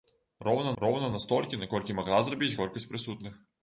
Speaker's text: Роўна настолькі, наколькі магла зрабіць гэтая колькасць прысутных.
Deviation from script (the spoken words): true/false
true